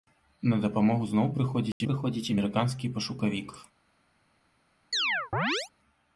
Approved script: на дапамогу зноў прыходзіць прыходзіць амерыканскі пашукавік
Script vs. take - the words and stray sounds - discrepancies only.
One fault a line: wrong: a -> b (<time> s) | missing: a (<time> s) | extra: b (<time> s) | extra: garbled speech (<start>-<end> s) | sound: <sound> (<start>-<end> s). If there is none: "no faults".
sound: dropout (1.7-1.8 s)
sound: chirp (4.9-5.7 s)